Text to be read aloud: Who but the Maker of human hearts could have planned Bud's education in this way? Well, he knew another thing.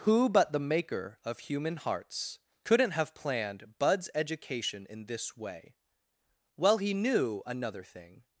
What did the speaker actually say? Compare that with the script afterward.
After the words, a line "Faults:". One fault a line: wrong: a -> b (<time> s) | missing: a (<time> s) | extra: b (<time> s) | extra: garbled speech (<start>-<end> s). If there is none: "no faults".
Who but the Maker of human hearts couldn't have planned Bud's education in this way? Well, he knew another thing.
Faults:
wrong: could -> couldn't (2.6 s)